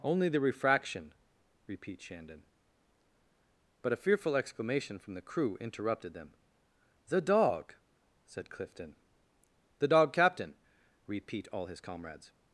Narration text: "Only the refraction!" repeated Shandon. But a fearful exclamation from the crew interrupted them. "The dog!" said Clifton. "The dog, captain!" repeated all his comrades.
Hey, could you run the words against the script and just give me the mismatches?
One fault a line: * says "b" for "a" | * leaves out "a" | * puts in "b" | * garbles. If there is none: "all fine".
* says "repeat" for "repeated"
* says "repeat" for "repeated"